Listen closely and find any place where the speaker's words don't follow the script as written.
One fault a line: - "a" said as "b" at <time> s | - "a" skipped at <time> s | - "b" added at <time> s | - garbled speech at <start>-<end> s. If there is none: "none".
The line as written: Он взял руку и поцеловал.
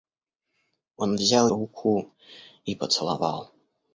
none